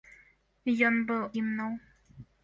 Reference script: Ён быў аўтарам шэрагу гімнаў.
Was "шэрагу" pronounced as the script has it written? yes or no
no